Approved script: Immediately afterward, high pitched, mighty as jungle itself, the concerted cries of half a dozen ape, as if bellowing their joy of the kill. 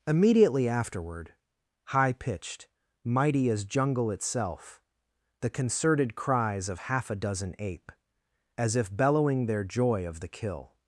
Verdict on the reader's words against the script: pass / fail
pass